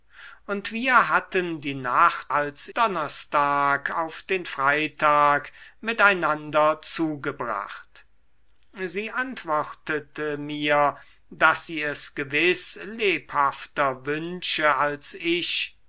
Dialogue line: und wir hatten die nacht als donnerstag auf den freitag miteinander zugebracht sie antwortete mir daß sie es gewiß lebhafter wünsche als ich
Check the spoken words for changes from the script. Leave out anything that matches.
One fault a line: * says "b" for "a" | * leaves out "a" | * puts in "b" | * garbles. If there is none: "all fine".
all fine